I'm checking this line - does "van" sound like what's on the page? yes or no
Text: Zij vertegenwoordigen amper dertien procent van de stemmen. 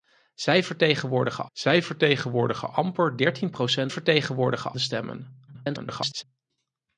no